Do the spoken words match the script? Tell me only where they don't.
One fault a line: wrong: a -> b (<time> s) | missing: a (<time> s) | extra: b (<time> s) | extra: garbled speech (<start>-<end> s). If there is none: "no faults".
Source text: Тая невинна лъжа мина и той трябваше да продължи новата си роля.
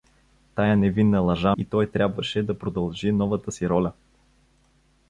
missing: мина (1.6 s)